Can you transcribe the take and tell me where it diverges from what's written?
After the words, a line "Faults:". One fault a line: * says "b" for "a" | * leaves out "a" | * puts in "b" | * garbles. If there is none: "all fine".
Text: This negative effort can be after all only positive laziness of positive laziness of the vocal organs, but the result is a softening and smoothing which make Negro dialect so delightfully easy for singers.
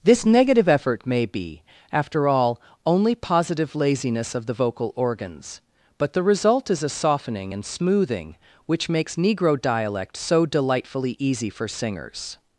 This negative effort may be after all only positive laziness of the vocal organs, but the result is a softening and smoothing which makes Negro dialect so delightfully easy for singers.
Faults:
* says "may" for "can"
* leaves out "positive laziness of"
* says "makes" for "make"